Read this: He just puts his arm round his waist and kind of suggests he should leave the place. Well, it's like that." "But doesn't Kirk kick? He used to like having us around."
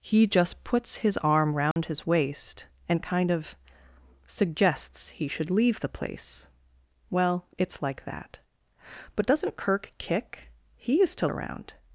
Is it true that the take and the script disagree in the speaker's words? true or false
true